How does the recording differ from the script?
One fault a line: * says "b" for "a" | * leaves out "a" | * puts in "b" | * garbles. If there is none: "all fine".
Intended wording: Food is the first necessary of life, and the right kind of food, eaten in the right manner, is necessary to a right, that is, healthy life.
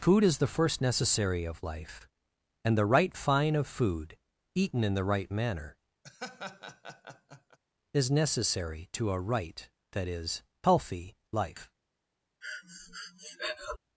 * says "fine" for "kind"